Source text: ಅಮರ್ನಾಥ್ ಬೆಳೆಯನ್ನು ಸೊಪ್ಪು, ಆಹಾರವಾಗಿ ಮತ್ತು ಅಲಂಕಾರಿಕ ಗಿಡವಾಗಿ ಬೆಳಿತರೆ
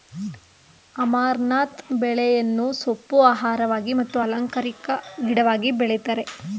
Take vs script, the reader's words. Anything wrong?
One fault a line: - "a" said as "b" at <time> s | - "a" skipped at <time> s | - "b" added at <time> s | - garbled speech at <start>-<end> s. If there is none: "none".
none